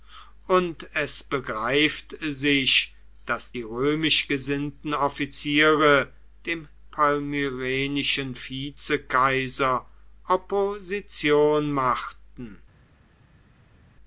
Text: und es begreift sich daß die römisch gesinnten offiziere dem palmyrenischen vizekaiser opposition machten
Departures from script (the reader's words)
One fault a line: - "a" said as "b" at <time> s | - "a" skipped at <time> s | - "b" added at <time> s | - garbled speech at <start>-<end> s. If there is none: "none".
none